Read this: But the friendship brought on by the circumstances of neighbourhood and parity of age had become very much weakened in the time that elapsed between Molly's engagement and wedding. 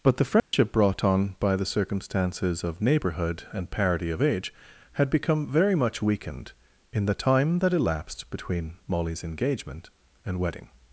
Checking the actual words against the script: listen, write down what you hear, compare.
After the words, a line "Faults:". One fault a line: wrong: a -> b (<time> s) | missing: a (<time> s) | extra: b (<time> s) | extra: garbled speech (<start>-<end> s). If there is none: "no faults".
But the friendship brought on by the circumstances of neighbourhood and parity of age had become very much weakened in the time that elapsed between Molly's engagement and wedding.
Faults:
no faults